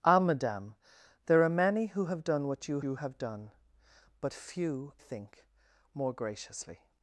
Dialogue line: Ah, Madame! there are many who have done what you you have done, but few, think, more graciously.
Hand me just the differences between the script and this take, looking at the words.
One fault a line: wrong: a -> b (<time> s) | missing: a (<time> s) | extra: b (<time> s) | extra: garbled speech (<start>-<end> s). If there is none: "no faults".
no faults